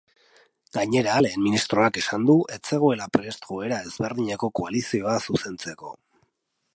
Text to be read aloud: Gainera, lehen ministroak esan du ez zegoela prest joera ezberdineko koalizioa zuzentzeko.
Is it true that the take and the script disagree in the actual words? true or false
false